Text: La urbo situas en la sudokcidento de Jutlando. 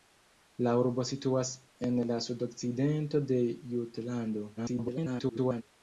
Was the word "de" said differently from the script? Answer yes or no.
no